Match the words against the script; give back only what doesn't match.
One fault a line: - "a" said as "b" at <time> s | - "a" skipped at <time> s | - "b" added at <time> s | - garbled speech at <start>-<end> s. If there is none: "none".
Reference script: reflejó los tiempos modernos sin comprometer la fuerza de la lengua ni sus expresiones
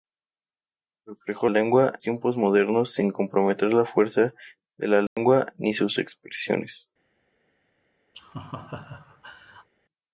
- "los" said as "lengua" at 1.5 s